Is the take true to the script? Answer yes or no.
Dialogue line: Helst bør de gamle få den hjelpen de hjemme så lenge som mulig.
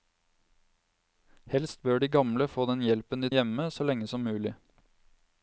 yes